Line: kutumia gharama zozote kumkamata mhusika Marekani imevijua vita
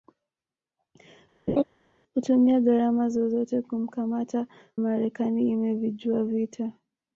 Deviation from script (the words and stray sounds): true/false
true